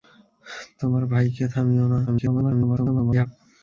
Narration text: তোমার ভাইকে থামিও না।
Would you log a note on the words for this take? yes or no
yes